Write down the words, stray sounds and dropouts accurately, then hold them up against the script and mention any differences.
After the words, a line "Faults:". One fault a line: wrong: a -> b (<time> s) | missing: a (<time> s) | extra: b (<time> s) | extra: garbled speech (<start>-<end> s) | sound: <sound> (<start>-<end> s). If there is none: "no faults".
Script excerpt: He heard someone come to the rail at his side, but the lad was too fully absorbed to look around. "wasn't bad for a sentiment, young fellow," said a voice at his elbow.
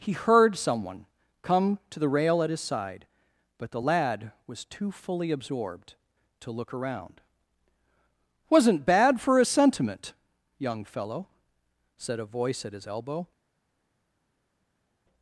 He heard someone come to the rail at his side, but the lad was too fully absorbed to look around. "wasn't bad for a sentiment, young fellow," said a voice at his elbow.
Faults:
no faults